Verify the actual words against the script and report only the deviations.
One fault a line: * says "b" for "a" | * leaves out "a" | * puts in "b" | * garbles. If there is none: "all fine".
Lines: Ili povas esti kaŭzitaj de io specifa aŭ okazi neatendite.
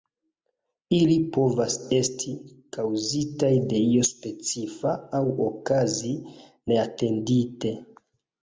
all fine